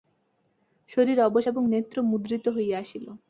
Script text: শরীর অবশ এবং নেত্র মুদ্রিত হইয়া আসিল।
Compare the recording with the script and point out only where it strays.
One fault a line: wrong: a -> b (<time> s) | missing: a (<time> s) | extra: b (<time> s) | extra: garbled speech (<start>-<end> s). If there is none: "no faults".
no faults